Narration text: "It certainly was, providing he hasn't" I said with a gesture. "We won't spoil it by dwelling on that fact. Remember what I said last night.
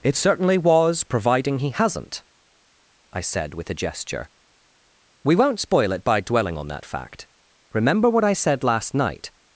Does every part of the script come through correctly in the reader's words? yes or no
yes